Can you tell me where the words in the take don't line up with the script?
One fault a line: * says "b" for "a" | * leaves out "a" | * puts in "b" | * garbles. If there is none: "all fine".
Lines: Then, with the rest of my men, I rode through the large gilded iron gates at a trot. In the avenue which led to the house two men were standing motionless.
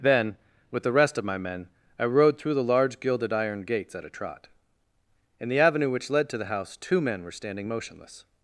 all fine